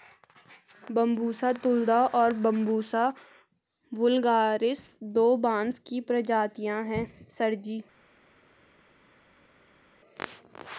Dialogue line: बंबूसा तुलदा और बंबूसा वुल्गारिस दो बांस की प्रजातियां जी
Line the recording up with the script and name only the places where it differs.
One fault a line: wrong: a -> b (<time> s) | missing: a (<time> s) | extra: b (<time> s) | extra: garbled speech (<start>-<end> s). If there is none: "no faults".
extra: हैं सर (6.9 s)